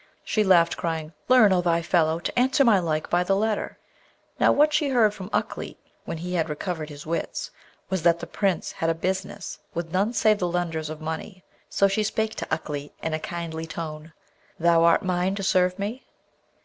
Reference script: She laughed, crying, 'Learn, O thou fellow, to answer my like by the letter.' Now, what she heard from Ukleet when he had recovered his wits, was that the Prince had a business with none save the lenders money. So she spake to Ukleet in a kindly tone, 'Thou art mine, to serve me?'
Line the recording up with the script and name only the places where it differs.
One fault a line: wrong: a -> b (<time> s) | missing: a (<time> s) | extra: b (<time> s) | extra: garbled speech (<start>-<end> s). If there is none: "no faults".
extra: of (10.9 s)